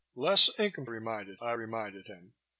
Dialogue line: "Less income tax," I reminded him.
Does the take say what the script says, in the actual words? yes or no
no